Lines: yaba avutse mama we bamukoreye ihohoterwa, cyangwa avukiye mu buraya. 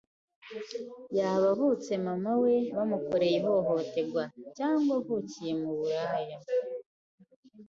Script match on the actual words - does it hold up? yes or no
yes